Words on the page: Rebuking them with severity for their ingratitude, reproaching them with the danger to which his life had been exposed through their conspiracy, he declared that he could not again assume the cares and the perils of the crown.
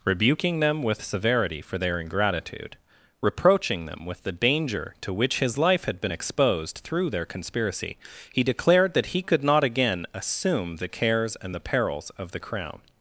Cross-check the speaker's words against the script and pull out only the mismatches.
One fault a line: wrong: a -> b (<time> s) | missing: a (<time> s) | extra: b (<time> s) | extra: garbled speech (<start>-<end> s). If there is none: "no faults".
no faults